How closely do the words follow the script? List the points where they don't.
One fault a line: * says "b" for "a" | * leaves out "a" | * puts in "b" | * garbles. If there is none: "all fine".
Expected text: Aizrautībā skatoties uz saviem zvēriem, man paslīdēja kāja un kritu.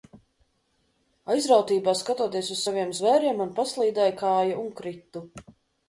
all fine